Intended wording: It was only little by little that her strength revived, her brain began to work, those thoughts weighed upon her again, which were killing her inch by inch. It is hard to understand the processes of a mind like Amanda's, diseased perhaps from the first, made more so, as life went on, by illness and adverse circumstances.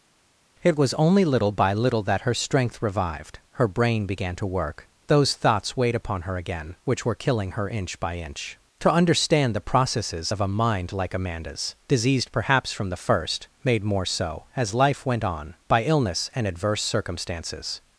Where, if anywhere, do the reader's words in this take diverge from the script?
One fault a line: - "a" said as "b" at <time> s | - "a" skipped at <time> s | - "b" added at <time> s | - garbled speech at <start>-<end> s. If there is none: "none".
- "It is hard" skipped at 8.6 s